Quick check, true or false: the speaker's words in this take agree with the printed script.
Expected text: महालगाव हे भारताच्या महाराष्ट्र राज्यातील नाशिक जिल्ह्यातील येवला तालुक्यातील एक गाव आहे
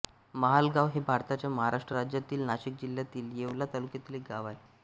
true